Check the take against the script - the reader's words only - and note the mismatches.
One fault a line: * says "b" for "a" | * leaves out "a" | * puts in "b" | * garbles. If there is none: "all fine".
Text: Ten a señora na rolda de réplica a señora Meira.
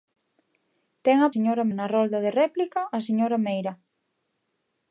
all fine